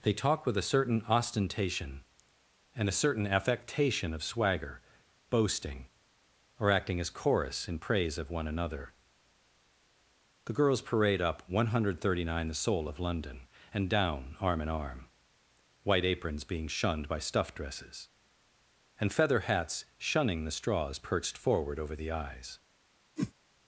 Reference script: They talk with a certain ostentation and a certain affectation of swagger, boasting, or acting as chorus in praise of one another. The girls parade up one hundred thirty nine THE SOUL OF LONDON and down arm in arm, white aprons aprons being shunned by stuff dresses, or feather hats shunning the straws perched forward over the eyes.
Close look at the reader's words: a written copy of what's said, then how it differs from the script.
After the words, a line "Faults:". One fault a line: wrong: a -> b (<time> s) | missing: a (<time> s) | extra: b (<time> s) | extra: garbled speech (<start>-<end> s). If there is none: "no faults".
They talk with a certain ostentation and a certain affectation of swagger, boasting, or acting as chorus in praise of one another. The girls parade up one hundred thirty nine THE SOUL OF LONDON and down arm in arm, white aprons being shunned by stuff dresses, and feather hats shunning the straws perched forward over the eyes.
Faults:
missing: aprons (16.4 s)
wrong: or -> and (19.0 s)